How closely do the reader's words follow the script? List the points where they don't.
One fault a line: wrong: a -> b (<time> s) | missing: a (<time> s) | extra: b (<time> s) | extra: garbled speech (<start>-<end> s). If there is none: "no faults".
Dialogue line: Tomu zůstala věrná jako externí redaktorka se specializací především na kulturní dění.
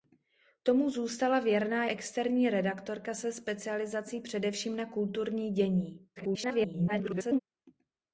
missing: jako (1.9 s)
extra: garbled speech (6.2-7.4 s)